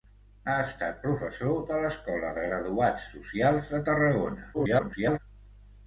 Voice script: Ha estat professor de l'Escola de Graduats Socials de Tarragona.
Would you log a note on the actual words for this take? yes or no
yes